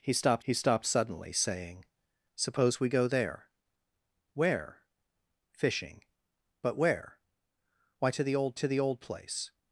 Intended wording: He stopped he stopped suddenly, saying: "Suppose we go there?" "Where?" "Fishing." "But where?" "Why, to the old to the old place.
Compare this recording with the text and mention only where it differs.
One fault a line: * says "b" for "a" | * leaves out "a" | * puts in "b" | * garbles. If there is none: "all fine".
all fine